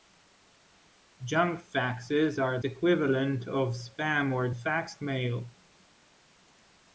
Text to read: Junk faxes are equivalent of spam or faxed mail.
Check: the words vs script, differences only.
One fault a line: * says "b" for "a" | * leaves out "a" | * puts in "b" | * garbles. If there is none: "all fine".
all fine